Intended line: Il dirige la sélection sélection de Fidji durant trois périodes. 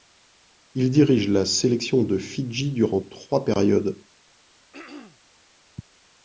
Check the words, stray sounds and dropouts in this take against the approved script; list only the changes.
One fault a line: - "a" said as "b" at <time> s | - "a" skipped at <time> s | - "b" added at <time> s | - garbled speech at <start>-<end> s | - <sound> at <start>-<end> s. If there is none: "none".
- "sélection" skipped at 2.0 s
- throat clearing at 4.7-5.2 s